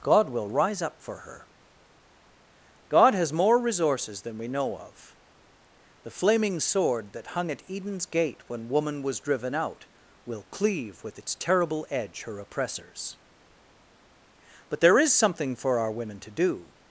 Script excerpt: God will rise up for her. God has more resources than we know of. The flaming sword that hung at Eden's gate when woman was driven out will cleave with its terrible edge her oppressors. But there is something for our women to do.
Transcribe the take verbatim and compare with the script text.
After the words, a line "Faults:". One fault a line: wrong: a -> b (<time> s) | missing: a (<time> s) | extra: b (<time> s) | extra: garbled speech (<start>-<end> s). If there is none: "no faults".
God will rise up for her. God has more resources than we know of. The flaming sword that hung at Eden's gate when woman was driven out will cleave with its terrible edge her oppressors. But there is something for our women to do.
Faults:
no faults